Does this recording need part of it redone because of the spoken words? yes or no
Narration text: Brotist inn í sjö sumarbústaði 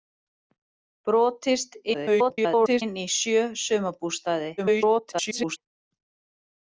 yes